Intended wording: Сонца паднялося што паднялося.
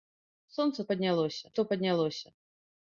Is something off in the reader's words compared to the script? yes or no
no